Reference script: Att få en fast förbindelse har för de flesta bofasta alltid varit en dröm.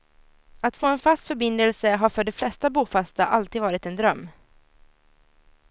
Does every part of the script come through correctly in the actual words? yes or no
yes